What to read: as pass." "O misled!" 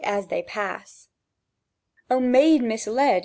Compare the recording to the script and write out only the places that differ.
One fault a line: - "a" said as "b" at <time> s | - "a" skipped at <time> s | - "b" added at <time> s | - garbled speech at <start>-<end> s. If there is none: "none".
- "they" added at 0.3 s
- "maid" added at 2.2 s